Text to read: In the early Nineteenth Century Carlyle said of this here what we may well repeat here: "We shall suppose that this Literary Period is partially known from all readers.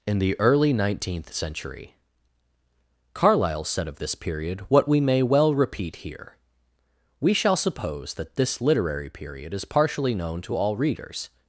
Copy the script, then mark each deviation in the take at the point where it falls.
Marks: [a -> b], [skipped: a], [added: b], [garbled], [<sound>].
In the early Nineteenth Century Carlyle said of this [here -> period] what we may well repeat here: "We shall suppose that this Literary Period is partially known [from -> to] all readers.